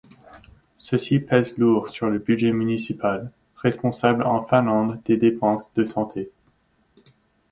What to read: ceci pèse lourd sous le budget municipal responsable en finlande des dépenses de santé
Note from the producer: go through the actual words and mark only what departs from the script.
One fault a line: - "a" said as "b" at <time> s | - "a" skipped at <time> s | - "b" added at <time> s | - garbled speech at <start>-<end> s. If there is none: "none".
- "sous" said as "sur" at 1.9 s